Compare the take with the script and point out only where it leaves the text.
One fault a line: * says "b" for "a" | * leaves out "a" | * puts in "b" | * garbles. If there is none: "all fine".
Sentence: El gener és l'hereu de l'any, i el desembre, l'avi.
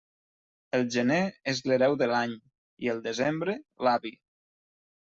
all fine